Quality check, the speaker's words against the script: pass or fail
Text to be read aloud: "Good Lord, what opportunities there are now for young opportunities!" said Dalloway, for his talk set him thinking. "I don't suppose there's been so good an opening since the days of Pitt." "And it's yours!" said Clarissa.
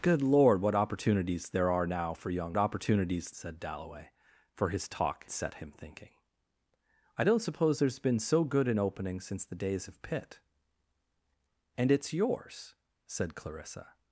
pass